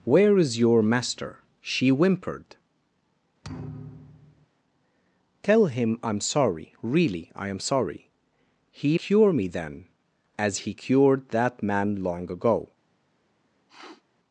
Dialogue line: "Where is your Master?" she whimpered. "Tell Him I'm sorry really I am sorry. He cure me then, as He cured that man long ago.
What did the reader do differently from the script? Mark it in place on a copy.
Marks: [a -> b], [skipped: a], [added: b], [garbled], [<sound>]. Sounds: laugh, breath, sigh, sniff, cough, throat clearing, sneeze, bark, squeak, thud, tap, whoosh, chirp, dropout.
"Where is your Master?" she whimpered. [thud] "Tell Him I'm sorry really I am sorry. He cure me then, as He cured that man long ago. [sniff]